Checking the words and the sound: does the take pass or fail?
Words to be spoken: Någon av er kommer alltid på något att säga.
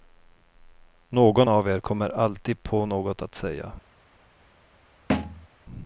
fail